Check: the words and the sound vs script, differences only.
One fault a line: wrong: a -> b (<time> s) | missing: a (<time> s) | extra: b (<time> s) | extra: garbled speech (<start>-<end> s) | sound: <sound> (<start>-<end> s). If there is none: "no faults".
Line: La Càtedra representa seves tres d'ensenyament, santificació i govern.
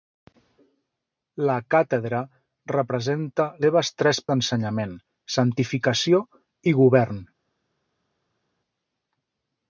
no faults